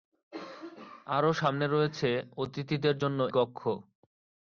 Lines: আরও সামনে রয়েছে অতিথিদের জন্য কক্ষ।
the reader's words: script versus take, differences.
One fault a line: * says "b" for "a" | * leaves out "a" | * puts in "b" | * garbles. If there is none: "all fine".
all fine